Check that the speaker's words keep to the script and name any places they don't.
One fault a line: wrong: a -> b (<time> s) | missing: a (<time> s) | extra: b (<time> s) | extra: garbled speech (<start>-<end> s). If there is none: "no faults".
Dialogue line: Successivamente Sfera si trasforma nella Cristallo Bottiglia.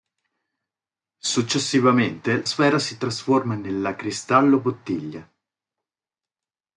no faults